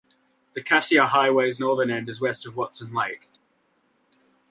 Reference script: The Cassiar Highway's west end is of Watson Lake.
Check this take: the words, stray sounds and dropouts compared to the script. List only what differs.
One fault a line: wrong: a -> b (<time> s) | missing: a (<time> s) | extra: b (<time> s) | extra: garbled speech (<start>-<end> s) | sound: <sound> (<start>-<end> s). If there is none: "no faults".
wrong: west -> northern (1.6 s)
extra: west (2.2 s)